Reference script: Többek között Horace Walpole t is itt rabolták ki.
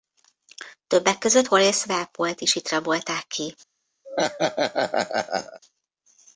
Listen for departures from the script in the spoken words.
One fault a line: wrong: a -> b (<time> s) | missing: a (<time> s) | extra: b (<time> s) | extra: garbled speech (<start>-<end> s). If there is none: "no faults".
no faults